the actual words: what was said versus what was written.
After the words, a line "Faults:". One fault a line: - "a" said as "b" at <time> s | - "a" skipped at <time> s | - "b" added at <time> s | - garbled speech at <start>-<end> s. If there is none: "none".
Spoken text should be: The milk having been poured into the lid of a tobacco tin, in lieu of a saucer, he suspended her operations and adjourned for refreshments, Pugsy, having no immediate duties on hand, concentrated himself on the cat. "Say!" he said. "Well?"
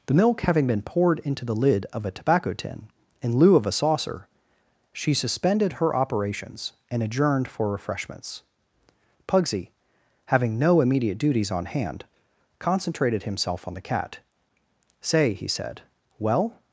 The milk having been poured into the lid of a tobacco tin, in lieu of a saucer, she suspended her operations and adjourned for refreshments, Pugsy, having no immediate duties on hand, concentrated himself on the cat. "Say!" he said. "Well?"
Faults:
- "he" said as "she" at 4.9 s